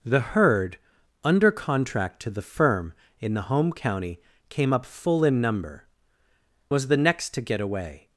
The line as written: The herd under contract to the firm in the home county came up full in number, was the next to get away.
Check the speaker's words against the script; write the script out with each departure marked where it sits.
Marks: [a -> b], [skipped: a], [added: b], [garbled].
The herd under contract to the firm in the home county came up full in number, was the next to get away.